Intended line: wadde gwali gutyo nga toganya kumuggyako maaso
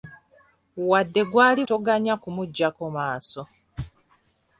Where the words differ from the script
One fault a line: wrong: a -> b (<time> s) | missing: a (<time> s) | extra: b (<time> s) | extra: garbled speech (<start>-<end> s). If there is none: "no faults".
missing: gutyo nga (1.6 s)